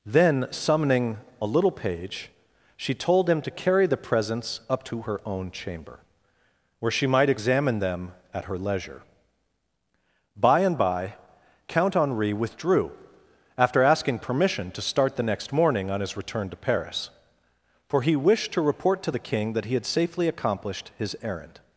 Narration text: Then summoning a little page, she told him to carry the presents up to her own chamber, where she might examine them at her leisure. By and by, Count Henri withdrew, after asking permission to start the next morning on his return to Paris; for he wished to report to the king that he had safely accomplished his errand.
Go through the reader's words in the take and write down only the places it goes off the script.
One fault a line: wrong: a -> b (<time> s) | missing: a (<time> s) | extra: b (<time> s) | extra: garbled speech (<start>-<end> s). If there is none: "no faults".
no faults